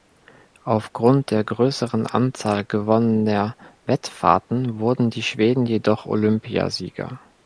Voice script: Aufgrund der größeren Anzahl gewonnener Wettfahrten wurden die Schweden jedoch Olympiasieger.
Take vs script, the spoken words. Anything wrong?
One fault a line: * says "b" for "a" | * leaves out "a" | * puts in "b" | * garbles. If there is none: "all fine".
all fine